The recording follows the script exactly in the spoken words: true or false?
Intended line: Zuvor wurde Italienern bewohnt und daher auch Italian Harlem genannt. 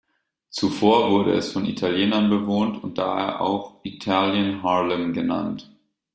false